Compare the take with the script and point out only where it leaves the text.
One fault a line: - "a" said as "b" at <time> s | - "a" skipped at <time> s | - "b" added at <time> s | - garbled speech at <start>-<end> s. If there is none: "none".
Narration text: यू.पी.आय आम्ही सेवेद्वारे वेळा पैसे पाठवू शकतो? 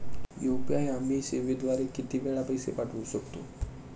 - "किती" added at 1.9 s